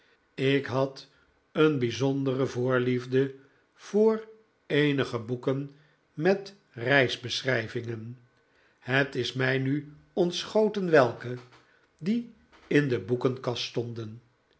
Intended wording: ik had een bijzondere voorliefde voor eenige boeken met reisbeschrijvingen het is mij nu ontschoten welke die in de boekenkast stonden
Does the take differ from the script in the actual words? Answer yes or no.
no